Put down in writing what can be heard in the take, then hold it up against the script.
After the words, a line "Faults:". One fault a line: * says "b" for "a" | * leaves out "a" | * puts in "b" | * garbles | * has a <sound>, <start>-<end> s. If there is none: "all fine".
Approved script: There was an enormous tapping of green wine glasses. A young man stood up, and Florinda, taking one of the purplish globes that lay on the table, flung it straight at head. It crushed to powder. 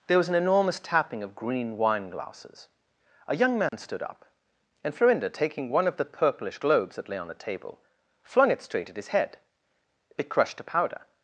There was an enormous tapping of green wine glasses. A young man stood up, and Florinda, taking one of the purplish globes that lay on the table, flung it straight at his head. It crushed to powder.
Faults:
* has a dropout, 3.7-3.7 s
* puts in "his"